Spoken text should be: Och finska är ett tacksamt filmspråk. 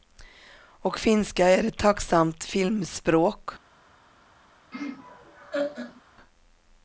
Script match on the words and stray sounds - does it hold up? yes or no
no